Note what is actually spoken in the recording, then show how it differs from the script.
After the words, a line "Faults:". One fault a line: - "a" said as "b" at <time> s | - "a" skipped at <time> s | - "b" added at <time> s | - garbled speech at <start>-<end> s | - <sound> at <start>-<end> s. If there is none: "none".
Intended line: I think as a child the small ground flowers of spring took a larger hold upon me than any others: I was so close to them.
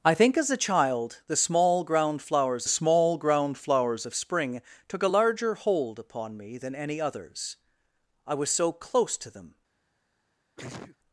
I think as a child the small ground flowers small ground flowers of spring took a larger hold upon me than any others: I was so close to them.
Faults:
- "small ground flowers" added at 2.7 s
- sneeze at 10.6-11.0 s